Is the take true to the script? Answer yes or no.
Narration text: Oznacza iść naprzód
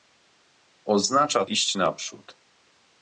yes